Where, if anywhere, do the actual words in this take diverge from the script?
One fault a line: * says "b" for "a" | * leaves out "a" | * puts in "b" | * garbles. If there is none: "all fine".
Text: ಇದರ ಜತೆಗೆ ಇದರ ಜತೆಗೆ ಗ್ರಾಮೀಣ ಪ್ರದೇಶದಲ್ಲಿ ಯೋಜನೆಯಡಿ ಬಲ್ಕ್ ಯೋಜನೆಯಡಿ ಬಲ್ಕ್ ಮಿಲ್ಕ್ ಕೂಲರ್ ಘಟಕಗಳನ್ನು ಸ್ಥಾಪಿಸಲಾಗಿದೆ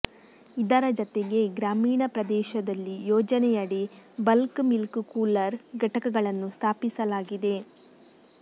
* leaves out "ಇದರ ಜತೆಗೆ"
* leaves out "ಯೋಜನೆಯಡಿ ಬಲ್ಕ್"